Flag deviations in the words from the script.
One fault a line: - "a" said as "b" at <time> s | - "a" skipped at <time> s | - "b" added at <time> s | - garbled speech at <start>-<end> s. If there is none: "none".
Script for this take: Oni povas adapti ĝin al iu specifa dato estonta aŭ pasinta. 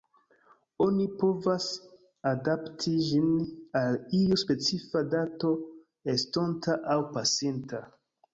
none